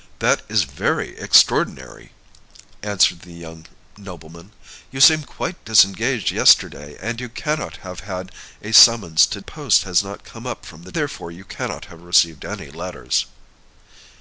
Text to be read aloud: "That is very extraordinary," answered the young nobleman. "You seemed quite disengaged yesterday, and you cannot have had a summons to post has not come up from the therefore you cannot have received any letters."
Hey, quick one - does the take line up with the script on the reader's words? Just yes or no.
yes